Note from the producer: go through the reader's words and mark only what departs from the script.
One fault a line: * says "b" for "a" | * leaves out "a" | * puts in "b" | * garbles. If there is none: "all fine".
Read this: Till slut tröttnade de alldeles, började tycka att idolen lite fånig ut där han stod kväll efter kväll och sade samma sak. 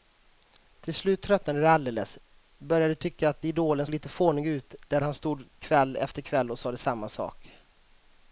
all fine